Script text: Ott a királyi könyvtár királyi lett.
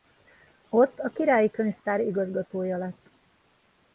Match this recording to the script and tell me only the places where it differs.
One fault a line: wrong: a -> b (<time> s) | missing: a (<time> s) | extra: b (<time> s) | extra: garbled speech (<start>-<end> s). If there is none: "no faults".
wrong: királyi -> igazgatója (2.0 s)